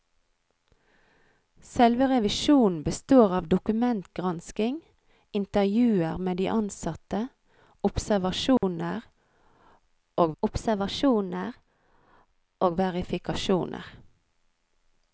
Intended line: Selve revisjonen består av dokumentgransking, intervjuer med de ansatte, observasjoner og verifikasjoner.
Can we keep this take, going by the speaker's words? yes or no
no